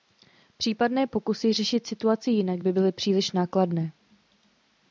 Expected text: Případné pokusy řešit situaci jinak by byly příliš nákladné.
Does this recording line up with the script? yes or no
yes